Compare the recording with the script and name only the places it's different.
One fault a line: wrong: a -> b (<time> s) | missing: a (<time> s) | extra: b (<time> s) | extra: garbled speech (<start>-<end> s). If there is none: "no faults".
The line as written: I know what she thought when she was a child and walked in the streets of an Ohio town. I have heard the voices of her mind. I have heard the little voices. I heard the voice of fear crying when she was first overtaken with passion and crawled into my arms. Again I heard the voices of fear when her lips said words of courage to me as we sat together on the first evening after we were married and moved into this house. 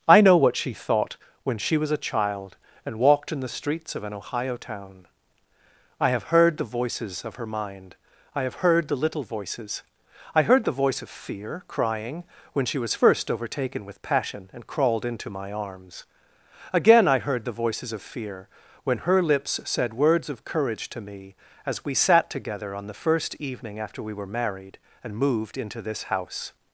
no faults